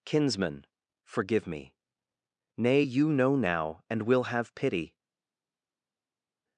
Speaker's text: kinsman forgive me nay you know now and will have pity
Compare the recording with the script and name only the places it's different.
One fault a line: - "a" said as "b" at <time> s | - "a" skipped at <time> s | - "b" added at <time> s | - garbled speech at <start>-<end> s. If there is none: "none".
none